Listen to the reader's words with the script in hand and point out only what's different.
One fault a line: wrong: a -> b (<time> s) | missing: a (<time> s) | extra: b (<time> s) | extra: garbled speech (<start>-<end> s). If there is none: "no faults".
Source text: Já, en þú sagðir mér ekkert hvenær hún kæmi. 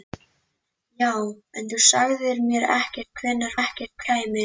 wrong: hún -> ekkert (3.6 s)